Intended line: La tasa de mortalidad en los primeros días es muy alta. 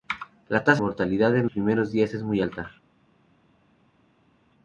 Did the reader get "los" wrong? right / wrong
wrong